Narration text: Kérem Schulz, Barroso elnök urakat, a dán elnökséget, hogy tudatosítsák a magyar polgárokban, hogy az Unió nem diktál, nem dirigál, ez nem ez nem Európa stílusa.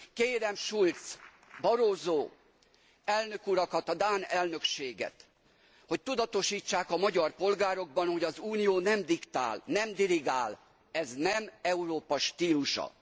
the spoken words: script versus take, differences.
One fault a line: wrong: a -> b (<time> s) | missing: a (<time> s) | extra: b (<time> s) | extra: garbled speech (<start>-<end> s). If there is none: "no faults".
missing: ez nem (11.5 s)